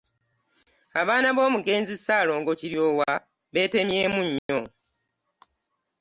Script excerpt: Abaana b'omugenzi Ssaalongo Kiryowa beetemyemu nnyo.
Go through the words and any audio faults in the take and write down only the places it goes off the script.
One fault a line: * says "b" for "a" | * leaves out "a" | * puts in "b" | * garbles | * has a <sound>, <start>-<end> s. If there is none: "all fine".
* has a dropout, 4.4-4.5 s